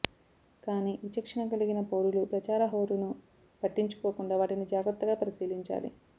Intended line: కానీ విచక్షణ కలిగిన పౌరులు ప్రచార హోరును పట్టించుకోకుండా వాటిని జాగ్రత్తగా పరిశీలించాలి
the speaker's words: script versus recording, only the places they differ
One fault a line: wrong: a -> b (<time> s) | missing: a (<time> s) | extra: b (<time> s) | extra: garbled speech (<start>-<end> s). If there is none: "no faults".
no faults